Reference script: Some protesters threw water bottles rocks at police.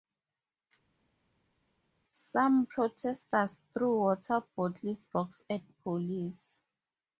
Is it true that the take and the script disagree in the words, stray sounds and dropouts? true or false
false